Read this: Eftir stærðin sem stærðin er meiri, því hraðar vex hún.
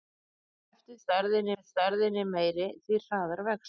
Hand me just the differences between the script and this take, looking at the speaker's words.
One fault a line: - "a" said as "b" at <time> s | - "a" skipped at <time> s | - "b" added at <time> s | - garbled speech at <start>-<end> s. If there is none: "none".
none